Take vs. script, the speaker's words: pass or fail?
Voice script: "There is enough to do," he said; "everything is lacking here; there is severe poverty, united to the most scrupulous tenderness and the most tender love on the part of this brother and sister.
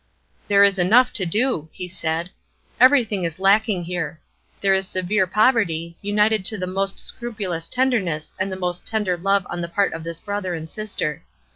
pass